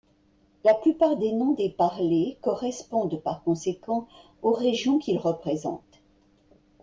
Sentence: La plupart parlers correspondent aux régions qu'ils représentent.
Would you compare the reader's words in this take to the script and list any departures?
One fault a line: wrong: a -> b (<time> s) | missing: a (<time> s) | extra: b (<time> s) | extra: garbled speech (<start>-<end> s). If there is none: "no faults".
extra: des noms des (1.2 s)
extra: par conséquent (3.2 s)